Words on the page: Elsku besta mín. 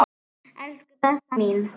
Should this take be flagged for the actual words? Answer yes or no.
no